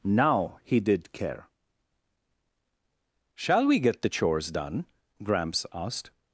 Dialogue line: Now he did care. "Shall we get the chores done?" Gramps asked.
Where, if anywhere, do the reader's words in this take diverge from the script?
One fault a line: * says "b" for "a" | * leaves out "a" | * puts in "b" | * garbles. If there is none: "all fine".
all fine